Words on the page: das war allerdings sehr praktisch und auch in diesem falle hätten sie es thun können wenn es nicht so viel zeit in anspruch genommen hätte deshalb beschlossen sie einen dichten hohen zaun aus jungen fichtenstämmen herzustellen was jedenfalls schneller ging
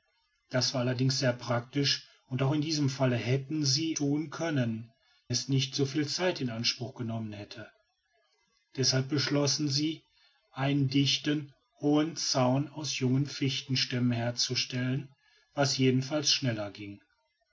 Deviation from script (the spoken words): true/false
true